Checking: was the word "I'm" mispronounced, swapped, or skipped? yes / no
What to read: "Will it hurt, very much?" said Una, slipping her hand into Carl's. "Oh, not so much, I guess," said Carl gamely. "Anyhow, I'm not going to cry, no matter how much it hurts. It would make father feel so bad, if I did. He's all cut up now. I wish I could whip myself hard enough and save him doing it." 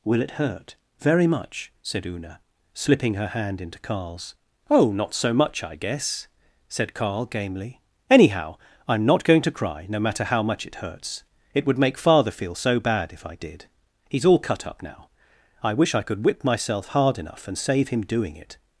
no